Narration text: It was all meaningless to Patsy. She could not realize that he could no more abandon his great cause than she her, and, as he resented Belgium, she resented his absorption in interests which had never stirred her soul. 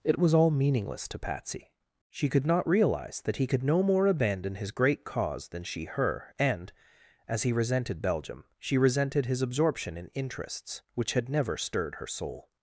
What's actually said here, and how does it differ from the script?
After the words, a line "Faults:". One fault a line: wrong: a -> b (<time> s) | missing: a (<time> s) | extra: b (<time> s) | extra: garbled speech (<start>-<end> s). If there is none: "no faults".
It was all meaningless to Patsy. She could not realize that he could no more abandon his great cause than she her, and, as he resented Belgium, she resented his absorption in interests which had never stirred her soul.
Faults:
no faults